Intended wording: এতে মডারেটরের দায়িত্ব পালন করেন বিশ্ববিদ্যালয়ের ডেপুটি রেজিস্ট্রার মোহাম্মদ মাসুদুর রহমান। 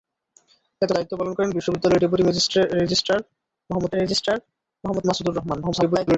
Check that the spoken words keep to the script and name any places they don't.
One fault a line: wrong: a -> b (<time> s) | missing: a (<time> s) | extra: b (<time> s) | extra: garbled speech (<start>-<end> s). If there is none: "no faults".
missing: মডারেটরের (0.9 s)
extra: রেজিস্ট্রার মোহাম্মদ (4.0 s)
extra: garbled speech (5.6-6.2 s)